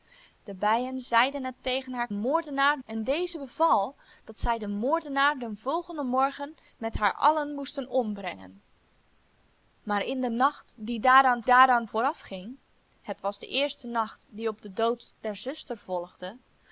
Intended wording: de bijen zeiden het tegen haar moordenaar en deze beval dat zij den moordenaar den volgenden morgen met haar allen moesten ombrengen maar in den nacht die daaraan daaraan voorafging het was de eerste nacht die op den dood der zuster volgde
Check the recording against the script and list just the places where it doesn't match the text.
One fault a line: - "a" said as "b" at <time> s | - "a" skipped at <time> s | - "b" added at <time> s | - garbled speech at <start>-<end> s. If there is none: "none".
none